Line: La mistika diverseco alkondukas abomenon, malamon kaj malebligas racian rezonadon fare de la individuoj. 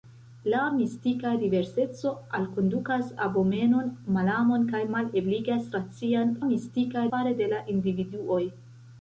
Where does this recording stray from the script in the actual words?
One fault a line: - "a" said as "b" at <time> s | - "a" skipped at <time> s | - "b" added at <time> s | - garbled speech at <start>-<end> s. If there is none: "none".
- "rezonadon" said as "mistika" at 6.5 s